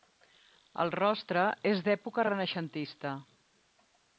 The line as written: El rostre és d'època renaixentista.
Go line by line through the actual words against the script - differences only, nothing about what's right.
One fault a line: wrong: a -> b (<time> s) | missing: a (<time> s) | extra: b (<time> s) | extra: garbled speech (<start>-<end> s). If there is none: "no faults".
no faults